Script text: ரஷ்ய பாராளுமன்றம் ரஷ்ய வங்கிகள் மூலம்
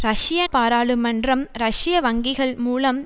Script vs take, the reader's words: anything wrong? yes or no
no